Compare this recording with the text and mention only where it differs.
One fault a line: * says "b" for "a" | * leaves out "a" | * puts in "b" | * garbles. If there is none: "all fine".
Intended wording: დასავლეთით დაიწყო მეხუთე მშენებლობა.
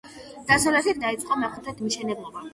all fine